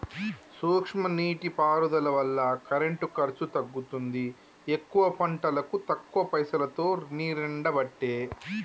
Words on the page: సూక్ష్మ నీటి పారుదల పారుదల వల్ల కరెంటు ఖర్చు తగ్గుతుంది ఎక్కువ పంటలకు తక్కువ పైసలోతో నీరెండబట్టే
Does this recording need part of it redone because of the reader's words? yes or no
yes